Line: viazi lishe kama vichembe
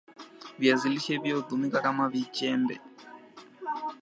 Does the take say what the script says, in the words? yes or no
no